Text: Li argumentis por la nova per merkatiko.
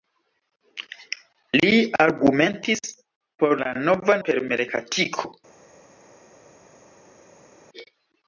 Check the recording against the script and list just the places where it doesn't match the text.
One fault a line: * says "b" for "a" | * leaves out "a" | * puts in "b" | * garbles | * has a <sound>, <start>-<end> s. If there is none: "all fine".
all fine